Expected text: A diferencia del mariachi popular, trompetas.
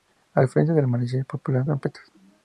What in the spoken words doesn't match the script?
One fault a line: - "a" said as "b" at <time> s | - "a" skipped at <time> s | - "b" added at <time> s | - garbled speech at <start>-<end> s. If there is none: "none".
none